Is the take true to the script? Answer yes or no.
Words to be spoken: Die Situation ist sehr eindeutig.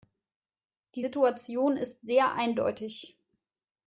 yes